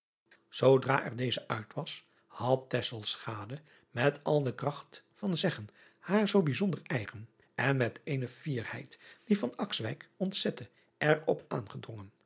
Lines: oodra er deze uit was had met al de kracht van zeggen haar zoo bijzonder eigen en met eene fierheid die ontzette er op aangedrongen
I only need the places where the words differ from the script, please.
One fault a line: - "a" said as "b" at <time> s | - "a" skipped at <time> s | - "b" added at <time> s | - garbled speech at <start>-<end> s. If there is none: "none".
none